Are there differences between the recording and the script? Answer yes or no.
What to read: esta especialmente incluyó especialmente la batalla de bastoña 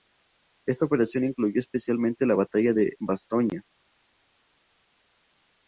yes